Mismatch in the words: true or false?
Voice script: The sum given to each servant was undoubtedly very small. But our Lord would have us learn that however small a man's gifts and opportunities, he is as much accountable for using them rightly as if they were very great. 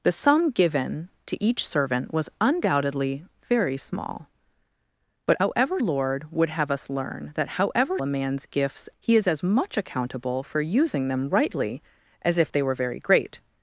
true